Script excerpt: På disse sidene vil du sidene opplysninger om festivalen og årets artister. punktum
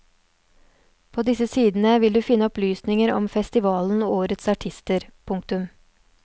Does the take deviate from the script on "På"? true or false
false